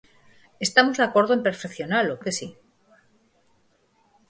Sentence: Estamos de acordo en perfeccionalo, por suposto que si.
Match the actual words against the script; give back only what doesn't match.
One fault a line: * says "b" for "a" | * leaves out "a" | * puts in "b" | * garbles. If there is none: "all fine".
* leaves out "por suposto"